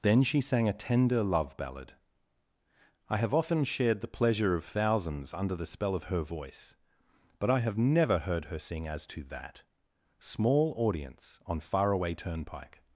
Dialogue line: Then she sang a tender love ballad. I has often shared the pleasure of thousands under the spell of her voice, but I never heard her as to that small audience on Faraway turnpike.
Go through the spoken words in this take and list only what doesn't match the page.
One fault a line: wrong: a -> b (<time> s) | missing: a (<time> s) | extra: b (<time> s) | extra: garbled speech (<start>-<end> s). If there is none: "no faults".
wrong: has -> have (3.2 s)
extra: have (7.6 s)
extra: sing (8.6 s)